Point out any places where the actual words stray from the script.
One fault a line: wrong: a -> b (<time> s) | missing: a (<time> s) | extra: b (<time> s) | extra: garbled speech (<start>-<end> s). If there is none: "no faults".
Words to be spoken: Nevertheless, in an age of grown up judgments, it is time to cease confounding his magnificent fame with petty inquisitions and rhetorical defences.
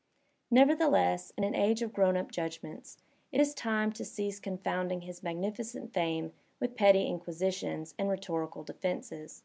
no faults